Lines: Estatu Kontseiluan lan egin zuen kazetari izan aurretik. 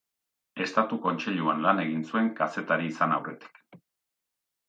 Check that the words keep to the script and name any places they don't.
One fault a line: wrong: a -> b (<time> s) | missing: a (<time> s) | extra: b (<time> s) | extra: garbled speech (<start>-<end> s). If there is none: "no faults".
no faults